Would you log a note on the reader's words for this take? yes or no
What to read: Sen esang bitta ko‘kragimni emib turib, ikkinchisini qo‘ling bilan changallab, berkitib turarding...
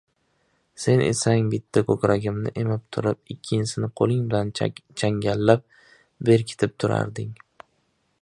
no